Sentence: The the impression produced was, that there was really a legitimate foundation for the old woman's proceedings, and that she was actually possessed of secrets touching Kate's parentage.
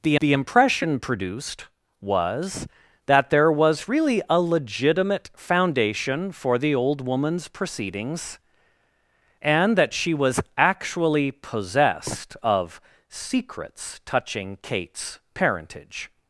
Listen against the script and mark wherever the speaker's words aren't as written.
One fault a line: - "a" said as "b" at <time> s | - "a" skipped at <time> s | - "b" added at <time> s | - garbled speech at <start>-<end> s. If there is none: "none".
none